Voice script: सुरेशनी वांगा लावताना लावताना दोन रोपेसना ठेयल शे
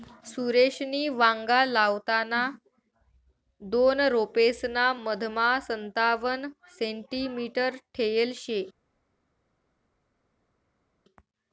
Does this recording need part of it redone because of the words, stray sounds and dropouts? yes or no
yes